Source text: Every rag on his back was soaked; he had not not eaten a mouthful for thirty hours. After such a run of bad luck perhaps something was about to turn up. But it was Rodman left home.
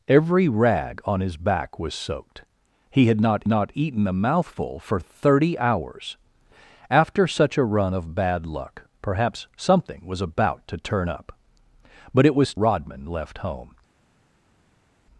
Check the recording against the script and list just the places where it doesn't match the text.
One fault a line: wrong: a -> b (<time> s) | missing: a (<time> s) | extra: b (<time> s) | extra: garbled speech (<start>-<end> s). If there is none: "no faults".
no faults